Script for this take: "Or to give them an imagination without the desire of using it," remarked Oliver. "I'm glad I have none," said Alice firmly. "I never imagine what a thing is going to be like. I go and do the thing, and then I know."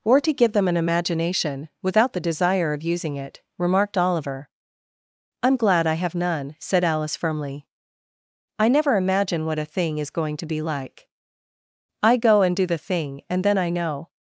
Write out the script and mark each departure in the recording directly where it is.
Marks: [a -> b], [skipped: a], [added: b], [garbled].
"Or to give them an imagination without the desire of using it," remarked Oliver. "I'm glad I have none," said Alice firmly. "I never imagine what a thing is going to be like. I go and do the thing, and then I know."